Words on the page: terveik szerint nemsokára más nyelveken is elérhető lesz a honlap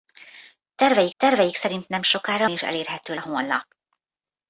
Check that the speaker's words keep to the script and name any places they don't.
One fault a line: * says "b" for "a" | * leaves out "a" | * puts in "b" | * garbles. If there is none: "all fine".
* puts in "terveik"
* leaves out "más nyelveken"
* leaves out "lesz"